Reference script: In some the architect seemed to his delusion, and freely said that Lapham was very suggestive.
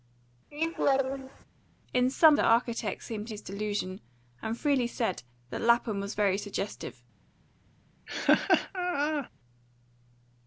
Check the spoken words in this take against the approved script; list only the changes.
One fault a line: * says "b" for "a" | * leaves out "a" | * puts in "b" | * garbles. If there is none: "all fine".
all fine